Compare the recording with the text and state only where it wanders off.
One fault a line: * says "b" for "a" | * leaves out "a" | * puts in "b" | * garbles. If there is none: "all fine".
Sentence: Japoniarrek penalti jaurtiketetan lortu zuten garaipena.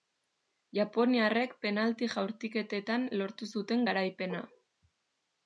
all fine